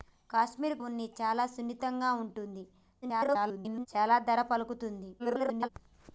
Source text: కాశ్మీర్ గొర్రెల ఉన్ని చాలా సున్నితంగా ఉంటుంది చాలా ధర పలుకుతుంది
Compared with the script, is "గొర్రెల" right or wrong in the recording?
wrong